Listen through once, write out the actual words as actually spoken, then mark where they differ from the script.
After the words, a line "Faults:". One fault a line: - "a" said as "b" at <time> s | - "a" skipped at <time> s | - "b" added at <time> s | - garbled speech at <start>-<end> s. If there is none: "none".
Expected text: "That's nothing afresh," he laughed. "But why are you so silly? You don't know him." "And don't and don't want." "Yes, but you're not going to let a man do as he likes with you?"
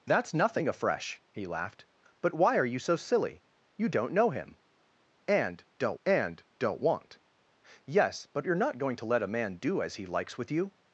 "That's nothing afresh," he laughed. "But why are you so silly? You don't know him." "And don't and don't want." "Yes, but you're not going to let a man do as he likes with you?"
Faults:
none